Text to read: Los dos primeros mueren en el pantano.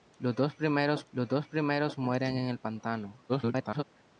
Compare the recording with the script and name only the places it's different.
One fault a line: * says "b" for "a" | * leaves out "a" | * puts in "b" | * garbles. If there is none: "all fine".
* puts in "los dos primeros"
* garbles